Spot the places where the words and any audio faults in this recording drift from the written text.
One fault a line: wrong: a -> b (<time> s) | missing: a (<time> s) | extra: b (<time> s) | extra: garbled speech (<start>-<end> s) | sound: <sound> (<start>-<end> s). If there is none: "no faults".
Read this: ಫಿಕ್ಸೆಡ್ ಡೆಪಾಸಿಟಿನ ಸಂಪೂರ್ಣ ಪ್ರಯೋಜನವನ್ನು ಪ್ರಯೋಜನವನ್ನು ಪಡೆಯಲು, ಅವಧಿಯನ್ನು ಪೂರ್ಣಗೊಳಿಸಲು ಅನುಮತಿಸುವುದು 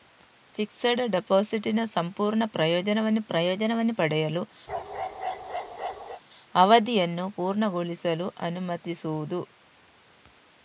sound: bark (4.7-6.2 s)